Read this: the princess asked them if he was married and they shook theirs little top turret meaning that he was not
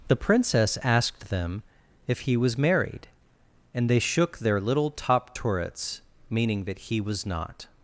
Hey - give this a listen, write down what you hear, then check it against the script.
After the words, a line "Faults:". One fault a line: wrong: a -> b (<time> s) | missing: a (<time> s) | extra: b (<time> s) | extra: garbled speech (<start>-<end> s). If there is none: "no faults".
the princess asked them if he was married and they shook their little top turrets meaning that he was not
Faults:
wrong: theirs -> their (4.4 s)
wrong: turret -> turrets (5.3 s)